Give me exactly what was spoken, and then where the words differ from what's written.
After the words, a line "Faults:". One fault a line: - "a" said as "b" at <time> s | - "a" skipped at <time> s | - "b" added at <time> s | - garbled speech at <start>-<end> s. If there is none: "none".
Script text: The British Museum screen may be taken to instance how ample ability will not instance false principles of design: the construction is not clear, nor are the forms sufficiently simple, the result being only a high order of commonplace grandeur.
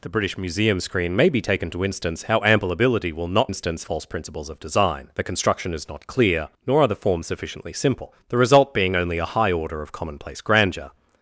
The British Museum screen may be taken to instance how ample ability will not instance false principles of design: the construction is not clear, nor are the forms sufficiently simple, the result being only a high order of commonplace grandeur.
Faults:
none